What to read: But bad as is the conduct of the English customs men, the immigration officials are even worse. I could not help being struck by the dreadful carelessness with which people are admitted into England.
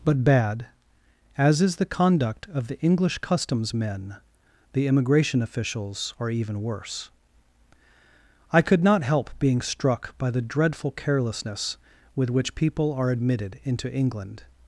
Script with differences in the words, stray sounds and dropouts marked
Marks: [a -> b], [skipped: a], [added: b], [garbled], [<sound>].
But bad as is the conduct of the English customs men, the immigration officials are even worse. I could not help being struck by the dreadful carelessness with which people are admitted into England.